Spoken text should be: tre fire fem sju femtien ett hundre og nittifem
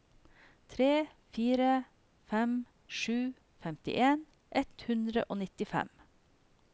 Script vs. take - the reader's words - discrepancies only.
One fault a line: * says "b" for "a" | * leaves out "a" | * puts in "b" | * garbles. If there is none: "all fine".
all fine